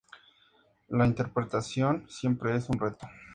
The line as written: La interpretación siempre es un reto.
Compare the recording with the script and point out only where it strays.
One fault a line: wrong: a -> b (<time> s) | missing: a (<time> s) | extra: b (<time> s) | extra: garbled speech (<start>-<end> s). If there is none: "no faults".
no faults